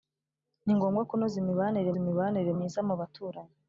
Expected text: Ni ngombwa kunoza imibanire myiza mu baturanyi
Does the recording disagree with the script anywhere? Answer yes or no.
yes